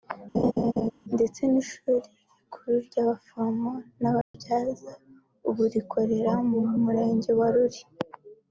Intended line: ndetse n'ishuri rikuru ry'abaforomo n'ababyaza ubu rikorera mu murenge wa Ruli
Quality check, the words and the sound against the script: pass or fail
fail